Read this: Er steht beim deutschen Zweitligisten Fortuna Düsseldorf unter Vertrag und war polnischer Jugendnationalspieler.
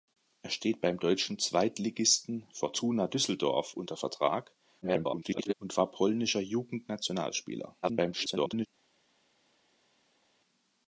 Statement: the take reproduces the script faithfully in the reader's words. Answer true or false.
false